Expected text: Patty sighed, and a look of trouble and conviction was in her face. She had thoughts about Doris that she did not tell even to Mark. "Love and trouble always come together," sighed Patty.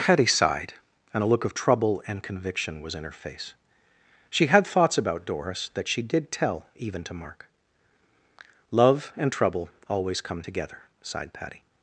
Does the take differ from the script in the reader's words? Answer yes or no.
yes